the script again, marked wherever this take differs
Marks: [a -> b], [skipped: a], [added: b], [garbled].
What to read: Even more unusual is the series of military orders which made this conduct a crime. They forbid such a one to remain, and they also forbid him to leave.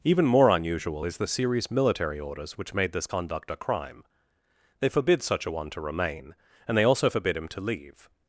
Even more unusual is the series [skipped: of] military orders which made this conduct a crime. They forbid such a one to remain, and they also forbid him to leave.